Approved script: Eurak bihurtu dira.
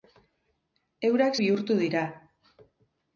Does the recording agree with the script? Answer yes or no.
yes